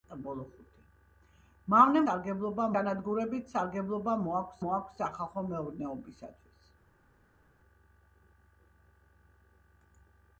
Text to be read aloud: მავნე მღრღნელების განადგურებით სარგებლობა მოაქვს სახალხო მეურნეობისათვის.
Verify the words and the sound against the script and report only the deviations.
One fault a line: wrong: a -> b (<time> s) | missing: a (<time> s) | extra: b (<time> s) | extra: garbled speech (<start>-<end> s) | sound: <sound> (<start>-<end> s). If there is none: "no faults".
wrong: მღრღნელების -> სარგებლობა (2.0 s)
extra: მოაქვს (4.6 s)